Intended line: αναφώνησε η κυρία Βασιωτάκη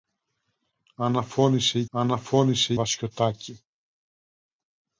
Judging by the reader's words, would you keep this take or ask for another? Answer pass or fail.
fail